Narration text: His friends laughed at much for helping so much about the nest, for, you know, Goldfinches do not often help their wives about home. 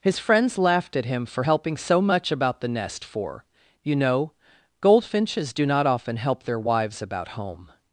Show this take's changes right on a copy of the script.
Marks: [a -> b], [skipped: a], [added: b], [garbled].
His friends laughed at [much -> him] for helping so much about the nest, for, you know, Goldfinches do not often help their wives about home.